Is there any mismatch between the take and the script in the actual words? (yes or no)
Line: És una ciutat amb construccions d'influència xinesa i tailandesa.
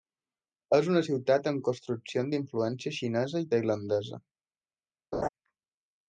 no